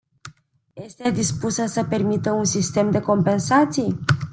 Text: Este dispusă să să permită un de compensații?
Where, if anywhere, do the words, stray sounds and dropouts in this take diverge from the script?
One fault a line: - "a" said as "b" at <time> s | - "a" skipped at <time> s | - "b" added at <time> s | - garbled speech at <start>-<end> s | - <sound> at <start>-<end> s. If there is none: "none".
- "să" skipped at 1.8 s
- "sistem" added at 2.4 s